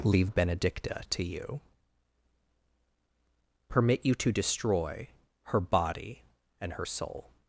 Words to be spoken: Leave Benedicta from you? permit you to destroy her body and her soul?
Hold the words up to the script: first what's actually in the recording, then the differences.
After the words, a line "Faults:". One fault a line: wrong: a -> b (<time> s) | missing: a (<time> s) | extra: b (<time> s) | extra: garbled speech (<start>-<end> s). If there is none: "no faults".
Leave Benedicta to you? permit you to destroy her body and her soul?
Faults:
wrong: from -> to (1.1 s)